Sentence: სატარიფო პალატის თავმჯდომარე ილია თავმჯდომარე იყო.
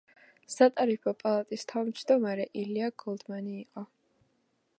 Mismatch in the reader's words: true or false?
true